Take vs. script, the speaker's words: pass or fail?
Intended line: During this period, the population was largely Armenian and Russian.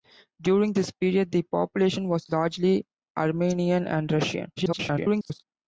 fail